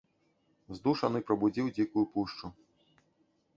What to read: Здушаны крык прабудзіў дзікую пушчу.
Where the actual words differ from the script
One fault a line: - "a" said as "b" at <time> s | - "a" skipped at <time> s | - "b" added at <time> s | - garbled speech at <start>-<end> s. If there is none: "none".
- "крык" skipped at 1.2 s